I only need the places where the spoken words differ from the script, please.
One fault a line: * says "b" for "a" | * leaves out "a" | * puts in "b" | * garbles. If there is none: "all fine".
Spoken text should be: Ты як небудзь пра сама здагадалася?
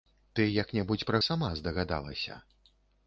all fine